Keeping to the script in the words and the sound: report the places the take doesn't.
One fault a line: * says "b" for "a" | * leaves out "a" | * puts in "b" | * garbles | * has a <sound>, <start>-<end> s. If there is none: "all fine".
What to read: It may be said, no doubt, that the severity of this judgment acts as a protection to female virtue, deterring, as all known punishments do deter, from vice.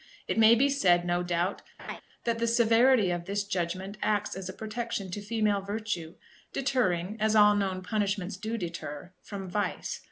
* has a laugh, 1.8-2.0 s